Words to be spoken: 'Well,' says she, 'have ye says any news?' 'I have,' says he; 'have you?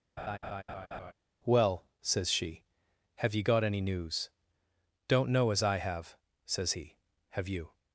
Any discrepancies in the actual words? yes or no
yes